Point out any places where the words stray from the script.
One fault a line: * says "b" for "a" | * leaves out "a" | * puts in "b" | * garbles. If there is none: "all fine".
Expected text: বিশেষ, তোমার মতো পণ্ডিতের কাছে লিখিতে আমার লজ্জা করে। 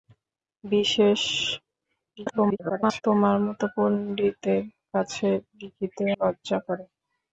* garbles
* leaves out "আমার"